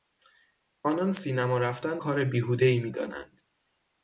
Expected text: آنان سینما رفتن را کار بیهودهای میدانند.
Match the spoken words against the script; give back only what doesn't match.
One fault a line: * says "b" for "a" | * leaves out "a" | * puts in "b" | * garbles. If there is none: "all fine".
* leaves out "را"